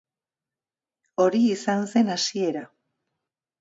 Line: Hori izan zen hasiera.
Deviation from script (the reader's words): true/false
false